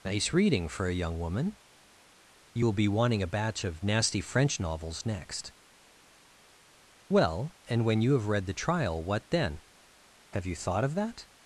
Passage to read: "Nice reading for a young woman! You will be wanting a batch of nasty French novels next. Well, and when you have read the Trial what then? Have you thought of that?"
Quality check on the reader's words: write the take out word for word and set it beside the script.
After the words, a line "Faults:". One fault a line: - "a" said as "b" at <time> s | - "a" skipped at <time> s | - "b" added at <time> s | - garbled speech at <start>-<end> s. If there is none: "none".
"Nice reading for a young woman! You will be wanting a batch of nasty French novels next. Well, and when you have read the Trial what then? Have you thought of that?"
Faults:
none